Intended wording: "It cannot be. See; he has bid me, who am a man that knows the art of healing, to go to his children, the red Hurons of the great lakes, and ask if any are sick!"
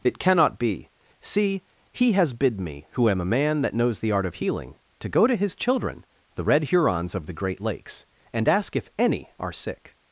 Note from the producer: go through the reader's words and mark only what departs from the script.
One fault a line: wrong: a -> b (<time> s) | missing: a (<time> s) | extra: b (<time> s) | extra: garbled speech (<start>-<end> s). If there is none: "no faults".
no faults